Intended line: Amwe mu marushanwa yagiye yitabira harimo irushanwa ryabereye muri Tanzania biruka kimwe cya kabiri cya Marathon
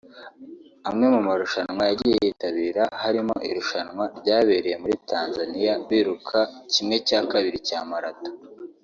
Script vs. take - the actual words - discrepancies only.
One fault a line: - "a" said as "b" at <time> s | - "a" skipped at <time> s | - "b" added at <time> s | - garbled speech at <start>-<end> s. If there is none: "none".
none